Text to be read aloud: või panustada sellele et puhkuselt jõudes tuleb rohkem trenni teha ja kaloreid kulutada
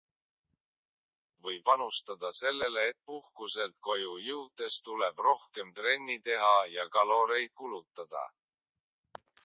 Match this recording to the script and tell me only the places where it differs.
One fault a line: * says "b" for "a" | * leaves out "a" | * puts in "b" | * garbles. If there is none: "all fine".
* puts in "koju"